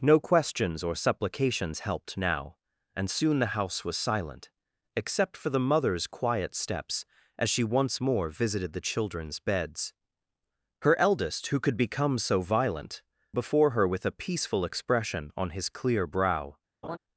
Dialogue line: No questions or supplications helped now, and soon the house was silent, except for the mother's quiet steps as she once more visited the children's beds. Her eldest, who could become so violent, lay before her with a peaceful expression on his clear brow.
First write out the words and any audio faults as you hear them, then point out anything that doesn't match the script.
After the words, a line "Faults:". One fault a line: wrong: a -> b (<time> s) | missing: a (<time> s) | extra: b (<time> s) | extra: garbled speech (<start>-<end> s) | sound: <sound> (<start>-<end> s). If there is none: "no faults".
No questions or supplications helped now, and soon the house was silent, except for the mother's quiet steps as she once more visited the children's beds. Her eldest, who could become so violent, before her with a peaceful expression on his clear brow.
Faults:
missing: lay (13.0 s)
sound: laugh (16.8-17.0 s)